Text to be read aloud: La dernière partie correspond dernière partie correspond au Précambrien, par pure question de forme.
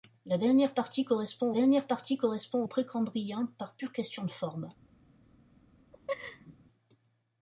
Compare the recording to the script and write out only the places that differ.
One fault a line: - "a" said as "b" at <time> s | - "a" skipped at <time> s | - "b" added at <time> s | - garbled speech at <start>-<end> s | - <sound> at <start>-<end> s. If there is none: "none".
- laugh at 5.9-6.6 s